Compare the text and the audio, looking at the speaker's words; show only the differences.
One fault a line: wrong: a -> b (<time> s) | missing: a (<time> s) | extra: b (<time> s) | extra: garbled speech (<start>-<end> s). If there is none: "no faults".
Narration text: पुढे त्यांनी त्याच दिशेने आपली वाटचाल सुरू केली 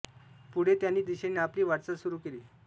missing: त्याच (1.0 s)